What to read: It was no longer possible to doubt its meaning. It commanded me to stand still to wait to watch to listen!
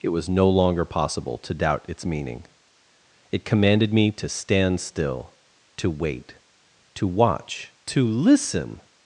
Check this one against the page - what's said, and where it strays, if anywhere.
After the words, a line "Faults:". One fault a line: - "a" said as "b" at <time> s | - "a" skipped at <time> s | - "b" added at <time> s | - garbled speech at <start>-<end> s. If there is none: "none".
It was no longer possible to doubt its meaning. It commanded me to stand still to wait to watch to listen!
Faults:
none